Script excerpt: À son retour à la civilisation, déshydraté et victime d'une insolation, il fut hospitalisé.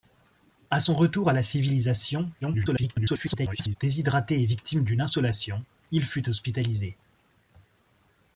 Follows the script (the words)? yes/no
no